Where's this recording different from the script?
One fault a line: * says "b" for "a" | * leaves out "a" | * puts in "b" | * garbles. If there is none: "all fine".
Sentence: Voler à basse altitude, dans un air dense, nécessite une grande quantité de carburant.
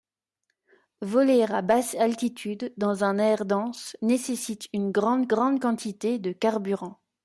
* puts in "grande"